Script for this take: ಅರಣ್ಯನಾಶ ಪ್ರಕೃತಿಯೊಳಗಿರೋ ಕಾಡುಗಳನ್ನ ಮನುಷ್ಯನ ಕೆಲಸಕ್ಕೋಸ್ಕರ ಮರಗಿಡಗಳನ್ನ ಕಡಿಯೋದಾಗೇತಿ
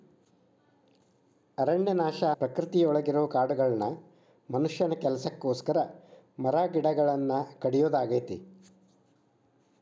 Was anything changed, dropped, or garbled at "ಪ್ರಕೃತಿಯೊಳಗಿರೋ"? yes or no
no